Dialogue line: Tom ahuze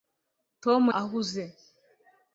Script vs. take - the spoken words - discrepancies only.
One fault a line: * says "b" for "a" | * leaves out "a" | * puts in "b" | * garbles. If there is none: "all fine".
all fine